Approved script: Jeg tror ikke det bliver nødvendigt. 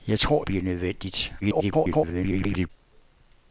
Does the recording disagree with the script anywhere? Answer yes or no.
yes